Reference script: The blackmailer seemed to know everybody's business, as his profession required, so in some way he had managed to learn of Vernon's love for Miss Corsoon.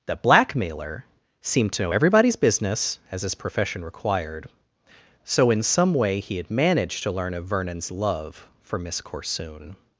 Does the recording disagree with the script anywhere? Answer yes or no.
no